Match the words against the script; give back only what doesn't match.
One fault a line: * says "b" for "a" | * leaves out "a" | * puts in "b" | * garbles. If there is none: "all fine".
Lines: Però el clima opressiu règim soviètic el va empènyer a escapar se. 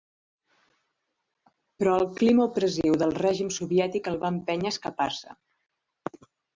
* puts in "del"